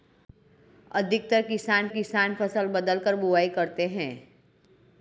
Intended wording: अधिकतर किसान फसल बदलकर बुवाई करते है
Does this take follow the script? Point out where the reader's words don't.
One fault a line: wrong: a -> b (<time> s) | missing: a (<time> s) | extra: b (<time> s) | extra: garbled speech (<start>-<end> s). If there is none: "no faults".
extra: किसान (1.9 s)